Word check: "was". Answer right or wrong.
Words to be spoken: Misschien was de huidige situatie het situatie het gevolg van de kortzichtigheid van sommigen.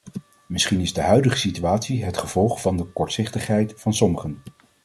wrong